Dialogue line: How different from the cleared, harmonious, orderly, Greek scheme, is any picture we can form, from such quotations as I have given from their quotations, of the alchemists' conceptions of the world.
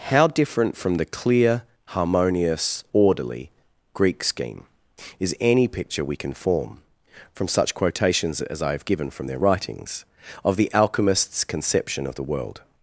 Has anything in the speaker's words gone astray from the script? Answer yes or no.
yes